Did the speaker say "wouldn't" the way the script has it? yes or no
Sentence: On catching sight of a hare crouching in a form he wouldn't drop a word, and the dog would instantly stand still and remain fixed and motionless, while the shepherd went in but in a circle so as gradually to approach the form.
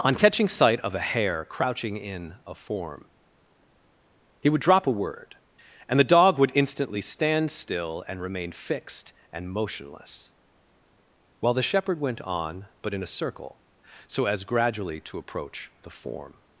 no